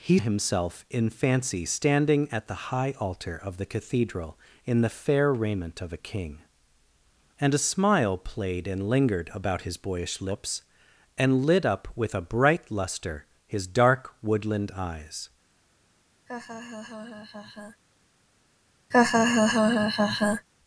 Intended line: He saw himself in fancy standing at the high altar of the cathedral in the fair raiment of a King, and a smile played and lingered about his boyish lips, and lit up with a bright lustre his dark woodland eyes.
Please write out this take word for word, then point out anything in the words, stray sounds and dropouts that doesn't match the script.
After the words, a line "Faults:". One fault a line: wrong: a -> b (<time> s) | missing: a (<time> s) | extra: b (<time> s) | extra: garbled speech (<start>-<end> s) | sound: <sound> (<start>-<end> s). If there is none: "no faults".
He himself in fancy standing at the high altar of the cathedral in the fair raiment of a King, and a smile played and lingered about his boyish lips, and lit up with a bright lustre his dark woodland eyes.
Faults:
missing: saw (0.2 s)
sound: laugh (16.3-17.8 s)
sound: laugh (18.9-20.5 s)